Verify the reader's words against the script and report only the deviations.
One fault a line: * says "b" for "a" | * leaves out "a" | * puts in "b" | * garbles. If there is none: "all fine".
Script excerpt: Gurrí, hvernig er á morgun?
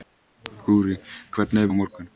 all fine